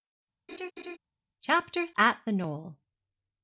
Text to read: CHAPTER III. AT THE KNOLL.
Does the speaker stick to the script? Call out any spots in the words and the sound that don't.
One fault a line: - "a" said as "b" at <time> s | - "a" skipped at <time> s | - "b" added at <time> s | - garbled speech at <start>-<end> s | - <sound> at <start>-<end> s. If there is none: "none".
- laugh at 0.5-1.0 s
- "III" skipped at 1.9 s